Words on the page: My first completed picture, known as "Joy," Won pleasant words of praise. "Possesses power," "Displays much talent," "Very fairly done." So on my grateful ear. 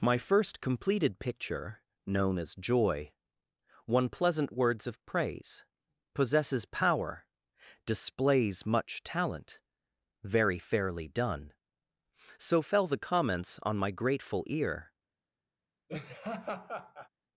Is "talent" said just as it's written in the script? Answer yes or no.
yes